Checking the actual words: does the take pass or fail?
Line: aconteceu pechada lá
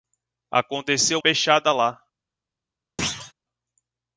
pass